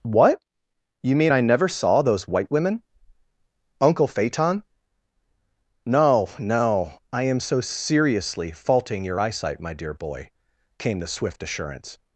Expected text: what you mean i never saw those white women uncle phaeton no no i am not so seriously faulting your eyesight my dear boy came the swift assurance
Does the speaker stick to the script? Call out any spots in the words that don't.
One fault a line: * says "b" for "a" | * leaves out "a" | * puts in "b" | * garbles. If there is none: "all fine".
* leaves out "not"